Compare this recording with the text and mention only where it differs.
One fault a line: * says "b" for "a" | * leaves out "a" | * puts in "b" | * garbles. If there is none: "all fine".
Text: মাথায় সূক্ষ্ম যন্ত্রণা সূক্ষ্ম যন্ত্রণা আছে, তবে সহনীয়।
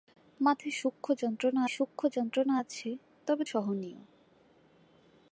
all fine